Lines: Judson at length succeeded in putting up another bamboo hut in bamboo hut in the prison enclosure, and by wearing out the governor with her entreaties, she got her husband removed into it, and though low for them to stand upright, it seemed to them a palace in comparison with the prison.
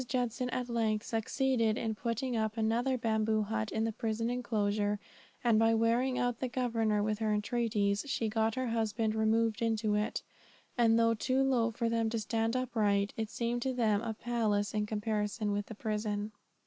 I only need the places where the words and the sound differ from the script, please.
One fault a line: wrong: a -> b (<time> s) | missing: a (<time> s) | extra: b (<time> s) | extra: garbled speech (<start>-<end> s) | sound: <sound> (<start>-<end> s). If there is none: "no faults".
missing: bamboo hut in (3.8 s)
extra: too (11.1 s)